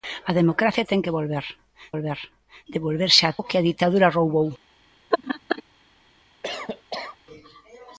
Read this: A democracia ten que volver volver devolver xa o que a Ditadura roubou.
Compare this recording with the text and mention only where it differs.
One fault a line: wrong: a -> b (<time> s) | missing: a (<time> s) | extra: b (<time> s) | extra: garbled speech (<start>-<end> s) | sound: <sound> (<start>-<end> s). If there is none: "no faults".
sound: laugh (5.1-5.6 s)
sound: cough (6.4-7.2 s)